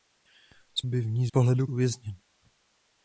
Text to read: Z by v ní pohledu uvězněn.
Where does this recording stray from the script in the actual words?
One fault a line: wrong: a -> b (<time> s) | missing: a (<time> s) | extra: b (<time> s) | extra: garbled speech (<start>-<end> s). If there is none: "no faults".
no faults